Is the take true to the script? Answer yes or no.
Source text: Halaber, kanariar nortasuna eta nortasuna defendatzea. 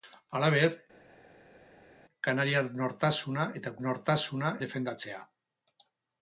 yes